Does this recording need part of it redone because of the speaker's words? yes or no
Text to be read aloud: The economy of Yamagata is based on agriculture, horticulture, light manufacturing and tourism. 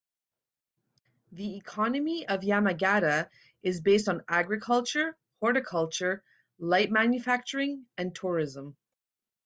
no